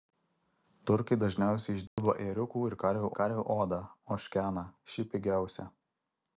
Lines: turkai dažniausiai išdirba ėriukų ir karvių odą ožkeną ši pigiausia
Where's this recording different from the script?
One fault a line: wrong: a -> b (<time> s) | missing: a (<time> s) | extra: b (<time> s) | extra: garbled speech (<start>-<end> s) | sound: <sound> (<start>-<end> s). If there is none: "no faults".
sound: dropout (1.9-2.0 s)
extra: karvių (3.2 s)